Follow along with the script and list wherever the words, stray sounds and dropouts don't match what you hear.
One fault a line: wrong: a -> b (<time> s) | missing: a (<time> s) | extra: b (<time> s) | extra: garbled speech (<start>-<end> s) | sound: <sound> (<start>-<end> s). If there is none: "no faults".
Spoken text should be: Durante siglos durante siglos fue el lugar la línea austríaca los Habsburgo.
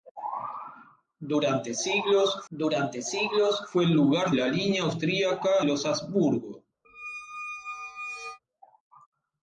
sound: squeak (6.8-8.4 s)